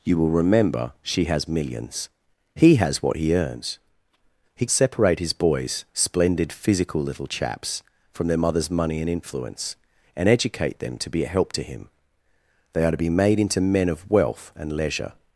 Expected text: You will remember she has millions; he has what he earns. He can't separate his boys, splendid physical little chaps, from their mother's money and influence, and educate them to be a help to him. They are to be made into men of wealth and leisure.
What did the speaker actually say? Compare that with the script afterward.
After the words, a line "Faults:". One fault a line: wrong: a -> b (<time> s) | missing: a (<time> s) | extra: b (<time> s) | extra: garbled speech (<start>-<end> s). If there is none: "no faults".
You will remember she has millions; he has what he earns. He separate his boys, splendid physical little chaps, from their mother's money and influence, and educate them to be a help to him. They are to be made into men of wealth and leisure.
Faults:
missing: can't (4.7 s)